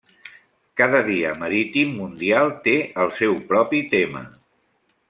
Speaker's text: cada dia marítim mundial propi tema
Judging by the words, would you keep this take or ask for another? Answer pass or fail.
fail